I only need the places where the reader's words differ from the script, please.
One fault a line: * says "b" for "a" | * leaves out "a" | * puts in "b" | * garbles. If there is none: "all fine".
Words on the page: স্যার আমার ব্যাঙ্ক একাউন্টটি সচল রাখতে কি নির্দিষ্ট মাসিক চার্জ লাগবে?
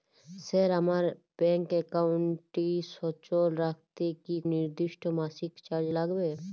all fine